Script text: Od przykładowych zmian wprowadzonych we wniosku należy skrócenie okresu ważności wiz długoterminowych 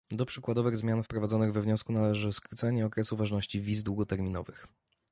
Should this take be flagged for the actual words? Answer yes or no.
yes